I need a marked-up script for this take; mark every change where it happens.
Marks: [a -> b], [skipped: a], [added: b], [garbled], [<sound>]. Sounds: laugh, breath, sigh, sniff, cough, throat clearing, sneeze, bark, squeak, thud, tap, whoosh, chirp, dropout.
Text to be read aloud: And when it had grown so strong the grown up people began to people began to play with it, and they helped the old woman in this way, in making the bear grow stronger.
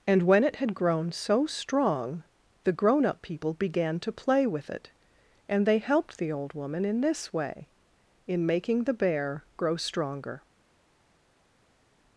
And when it had grown so strong the grown up people began to [skipped: people began to] play with it, and they helped the old woman in this way, in making the bear grow stronger.